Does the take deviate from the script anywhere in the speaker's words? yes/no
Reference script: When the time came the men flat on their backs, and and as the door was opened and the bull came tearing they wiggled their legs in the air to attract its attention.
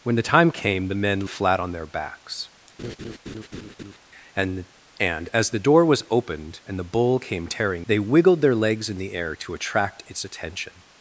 no